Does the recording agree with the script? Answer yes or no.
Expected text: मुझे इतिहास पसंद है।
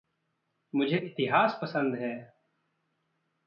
yes